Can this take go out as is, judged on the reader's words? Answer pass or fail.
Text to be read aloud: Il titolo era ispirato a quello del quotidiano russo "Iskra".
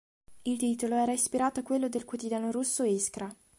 pass